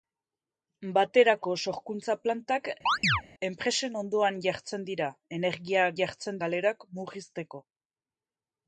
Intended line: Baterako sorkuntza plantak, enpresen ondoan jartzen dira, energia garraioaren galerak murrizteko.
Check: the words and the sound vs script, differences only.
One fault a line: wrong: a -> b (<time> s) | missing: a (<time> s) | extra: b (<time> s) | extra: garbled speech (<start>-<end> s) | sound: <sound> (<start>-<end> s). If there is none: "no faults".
sound: chirp (2.9-3.2 s)
wrong: garraioaren -> jartzen (6.0 s)